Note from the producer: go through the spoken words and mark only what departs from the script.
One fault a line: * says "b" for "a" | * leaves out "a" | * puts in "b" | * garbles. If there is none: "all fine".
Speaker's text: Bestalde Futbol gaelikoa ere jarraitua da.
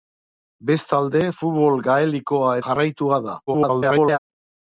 * leaves out "ere"
* garbles